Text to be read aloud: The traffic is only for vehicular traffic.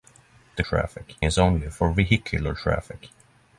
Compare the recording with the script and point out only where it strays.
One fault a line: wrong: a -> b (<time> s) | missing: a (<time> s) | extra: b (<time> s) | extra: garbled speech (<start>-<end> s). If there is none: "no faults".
no faults